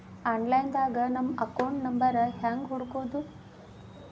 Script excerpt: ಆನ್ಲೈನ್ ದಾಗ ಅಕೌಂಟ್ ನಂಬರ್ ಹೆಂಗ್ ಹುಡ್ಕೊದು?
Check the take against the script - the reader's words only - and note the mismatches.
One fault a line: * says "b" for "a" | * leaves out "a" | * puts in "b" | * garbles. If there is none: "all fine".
* puts in "ನಮ್ಮ"